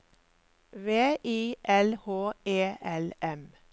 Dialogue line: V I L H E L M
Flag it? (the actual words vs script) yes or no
no